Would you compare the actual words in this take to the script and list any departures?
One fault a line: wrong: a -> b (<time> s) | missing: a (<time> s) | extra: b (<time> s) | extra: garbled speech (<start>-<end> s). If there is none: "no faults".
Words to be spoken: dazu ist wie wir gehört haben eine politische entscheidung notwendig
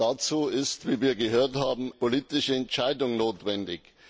missing: eine (1.9 s)